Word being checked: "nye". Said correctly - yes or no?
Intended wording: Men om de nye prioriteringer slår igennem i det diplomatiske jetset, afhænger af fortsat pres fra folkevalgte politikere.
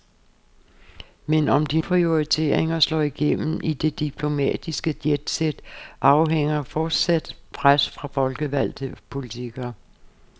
no